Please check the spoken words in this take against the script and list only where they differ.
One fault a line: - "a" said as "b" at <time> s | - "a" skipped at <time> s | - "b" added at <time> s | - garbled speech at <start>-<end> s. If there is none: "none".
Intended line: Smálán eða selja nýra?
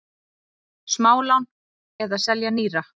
none